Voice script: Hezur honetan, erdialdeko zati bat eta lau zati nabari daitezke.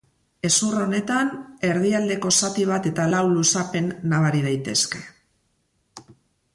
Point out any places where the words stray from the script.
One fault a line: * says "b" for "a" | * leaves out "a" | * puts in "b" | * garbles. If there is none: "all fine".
* says "luzapen" for "zati"